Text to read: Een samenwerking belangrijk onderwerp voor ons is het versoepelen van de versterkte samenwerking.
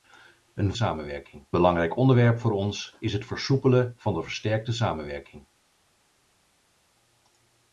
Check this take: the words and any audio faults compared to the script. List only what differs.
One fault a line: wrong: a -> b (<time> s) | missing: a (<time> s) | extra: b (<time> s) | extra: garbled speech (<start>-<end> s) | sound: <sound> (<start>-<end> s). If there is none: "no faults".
no faults